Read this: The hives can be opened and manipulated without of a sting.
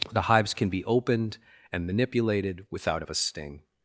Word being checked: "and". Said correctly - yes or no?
yes